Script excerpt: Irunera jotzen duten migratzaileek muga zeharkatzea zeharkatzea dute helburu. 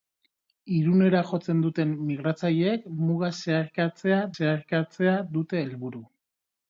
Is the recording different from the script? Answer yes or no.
no